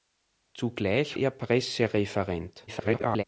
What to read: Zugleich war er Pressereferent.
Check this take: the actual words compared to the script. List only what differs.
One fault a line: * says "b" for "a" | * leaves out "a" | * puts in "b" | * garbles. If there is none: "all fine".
* leaves out "war"
* garbles